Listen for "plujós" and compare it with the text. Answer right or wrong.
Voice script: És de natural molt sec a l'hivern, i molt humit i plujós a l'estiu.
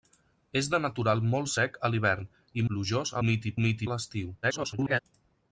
wrong